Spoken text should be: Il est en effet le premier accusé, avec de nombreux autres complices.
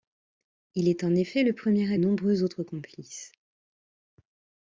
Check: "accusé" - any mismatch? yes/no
yes